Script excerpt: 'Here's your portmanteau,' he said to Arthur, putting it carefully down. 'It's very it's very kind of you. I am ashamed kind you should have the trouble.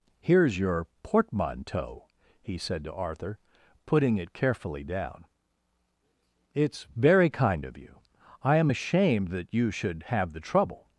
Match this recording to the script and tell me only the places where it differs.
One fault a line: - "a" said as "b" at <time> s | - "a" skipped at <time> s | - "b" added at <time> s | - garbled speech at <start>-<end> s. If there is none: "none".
- "it's very" skipped at 7.3 s
- "kind" said as "that" at 9.3 s